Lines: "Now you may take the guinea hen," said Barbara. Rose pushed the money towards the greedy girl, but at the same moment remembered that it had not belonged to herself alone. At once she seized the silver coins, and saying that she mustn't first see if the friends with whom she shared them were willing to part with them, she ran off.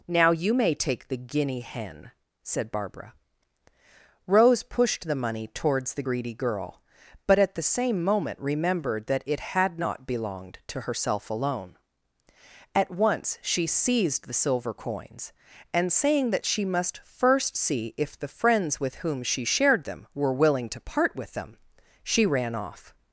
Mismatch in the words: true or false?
true